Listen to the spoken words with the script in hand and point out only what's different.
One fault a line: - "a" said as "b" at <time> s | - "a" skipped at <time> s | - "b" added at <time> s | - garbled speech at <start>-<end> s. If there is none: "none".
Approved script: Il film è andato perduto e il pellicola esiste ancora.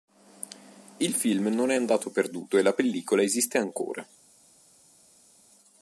- "non" added at 1.5 s
- "il" said as "la" at 2.6 s